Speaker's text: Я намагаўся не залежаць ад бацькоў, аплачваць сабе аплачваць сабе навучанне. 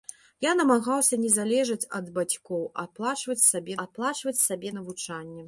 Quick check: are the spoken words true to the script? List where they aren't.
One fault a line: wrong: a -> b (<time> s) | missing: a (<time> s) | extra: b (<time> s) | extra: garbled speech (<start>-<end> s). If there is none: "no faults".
no faults